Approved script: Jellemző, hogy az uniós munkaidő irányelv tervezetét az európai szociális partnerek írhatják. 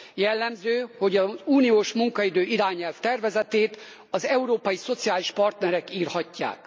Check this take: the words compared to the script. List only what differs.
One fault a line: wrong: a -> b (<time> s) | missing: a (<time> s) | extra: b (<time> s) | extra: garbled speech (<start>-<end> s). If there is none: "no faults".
no faults